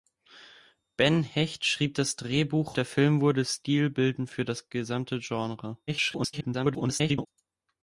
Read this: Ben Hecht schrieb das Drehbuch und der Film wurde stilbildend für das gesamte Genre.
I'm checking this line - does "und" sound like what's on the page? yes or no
no